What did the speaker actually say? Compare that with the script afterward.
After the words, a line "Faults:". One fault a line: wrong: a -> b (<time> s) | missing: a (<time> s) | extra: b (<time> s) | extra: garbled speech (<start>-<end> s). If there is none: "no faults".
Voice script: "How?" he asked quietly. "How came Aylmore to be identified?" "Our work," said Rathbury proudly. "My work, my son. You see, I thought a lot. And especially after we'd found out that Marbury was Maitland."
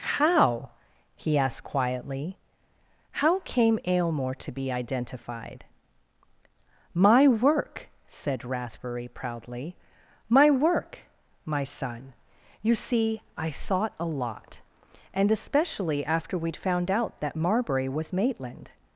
"How?" he asked quietly. "How came Aylmore to be identified?" "My work," said Rathbury proudly. "My work, my son. You see, I thought a lot. And especially after we'd found out that Marbury was Maitland."
Faults:
wrong: Our -> My (6.9 s)